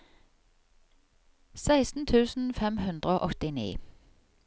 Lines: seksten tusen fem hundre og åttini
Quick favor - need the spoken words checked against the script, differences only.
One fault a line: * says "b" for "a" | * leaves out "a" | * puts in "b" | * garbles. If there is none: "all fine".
all fine